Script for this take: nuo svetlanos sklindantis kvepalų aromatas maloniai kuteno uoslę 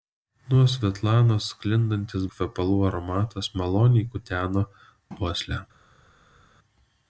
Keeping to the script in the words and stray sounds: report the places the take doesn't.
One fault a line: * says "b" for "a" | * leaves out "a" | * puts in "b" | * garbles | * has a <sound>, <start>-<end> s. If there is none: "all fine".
all fine